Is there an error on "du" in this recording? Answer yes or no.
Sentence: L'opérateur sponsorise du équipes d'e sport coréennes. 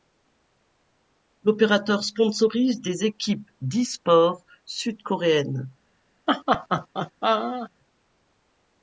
yes